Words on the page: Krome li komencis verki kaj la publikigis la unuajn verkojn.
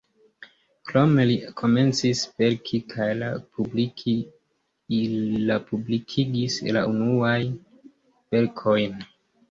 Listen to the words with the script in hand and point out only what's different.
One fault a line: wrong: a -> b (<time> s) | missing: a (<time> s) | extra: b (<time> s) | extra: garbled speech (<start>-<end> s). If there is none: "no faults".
no faults